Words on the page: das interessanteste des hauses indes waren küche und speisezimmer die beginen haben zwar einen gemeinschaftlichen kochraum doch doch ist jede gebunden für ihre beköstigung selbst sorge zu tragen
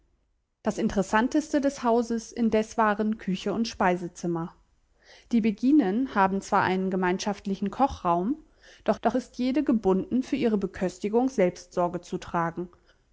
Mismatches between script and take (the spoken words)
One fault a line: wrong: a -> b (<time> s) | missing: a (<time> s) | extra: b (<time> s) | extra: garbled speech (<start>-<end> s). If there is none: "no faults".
no faults